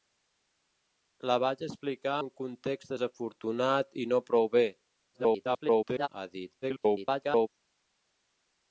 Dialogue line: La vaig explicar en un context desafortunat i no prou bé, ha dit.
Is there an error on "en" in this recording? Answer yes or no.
yes